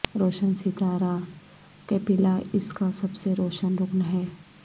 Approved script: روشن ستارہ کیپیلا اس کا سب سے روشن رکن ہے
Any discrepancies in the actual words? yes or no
no